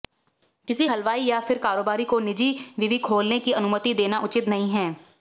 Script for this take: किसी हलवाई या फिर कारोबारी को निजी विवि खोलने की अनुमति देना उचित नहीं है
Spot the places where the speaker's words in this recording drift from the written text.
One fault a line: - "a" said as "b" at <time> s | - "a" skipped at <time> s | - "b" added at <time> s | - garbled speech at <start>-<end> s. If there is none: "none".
none